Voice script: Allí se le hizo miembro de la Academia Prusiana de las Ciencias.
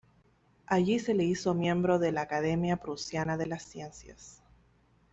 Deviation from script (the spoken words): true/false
false